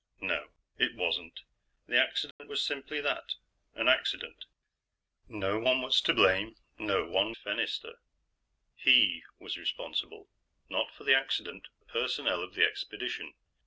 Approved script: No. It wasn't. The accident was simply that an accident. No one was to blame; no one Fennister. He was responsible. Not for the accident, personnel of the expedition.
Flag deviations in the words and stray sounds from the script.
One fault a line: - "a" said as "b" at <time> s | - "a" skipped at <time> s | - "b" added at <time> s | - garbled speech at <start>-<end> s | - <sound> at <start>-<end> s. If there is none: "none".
- dropout at 2.3-2.4 s